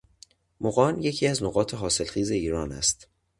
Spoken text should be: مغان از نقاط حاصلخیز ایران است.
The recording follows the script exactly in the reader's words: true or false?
false